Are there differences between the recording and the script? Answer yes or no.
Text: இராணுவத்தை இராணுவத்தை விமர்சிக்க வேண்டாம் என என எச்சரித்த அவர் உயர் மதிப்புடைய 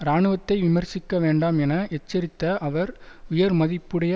yes